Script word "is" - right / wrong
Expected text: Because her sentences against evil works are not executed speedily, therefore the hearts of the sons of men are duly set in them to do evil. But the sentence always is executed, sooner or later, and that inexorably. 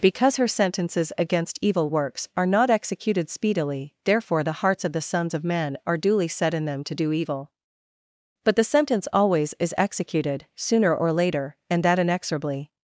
right